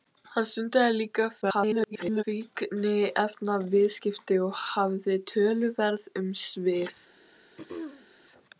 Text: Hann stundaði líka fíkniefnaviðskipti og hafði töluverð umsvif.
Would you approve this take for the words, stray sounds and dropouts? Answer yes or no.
no